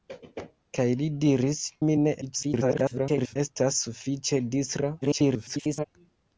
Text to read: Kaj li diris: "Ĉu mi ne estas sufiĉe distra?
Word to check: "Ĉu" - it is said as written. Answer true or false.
false